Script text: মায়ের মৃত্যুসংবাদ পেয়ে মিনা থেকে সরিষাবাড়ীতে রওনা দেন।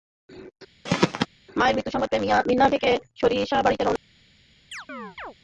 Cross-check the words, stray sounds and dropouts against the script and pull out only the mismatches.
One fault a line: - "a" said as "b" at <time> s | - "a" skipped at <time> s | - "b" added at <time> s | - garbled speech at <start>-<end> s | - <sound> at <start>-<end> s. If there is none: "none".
- throat clearing at 0.9-1.3 s
- chirp at 4.7-5.3 s